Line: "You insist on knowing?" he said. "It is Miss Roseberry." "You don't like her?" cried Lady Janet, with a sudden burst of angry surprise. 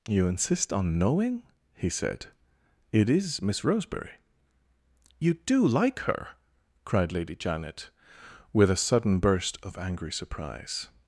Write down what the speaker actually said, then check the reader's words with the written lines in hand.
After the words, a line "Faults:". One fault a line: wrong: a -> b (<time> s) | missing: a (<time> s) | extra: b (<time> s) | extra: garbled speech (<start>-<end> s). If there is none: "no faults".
"You insist on knowing?" he said. "It is Miss Roseberry." "You do like her?" cried Lady Janet, with a sudden burst of angry surprise.
Faults:
wrong: don't -> do (5.3 s)